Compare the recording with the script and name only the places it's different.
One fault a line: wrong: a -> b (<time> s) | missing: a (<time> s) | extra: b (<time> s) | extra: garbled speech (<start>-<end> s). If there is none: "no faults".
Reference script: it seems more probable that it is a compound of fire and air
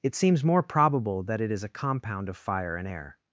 no faults